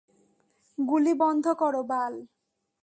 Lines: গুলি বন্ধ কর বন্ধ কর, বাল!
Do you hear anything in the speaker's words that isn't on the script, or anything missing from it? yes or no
yes